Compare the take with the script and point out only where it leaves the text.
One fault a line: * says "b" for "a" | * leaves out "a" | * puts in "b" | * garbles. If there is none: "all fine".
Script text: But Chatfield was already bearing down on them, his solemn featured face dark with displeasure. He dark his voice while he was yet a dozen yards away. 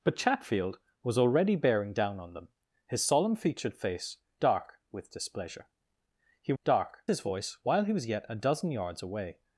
all fine